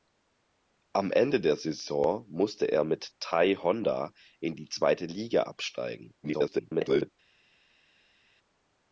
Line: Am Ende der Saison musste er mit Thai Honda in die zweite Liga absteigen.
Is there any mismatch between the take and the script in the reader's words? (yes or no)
yes